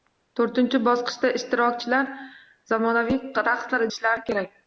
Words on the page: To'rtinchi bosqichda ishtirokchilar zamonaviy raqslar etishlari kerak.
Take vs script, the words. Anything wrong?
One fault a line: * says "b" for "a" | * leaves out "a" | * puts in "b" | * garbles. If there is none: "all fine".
all fine